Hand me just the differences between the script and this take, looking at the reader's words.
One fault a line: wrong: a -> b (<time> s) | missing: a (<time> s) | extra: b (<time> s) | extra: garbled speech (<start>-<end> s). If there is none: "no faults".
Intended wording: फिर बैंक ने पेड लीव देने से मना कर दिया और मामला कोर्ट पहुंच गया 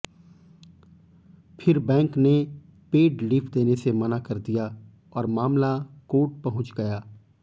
no faults